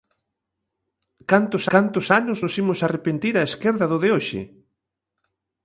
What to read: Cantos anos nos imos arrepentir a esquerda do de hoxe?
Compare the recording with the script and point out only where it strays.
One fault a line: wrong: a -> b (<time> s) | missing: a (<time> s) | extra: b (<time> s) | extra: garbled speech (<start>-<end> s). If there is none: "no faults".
extra: cantos (1.7 s)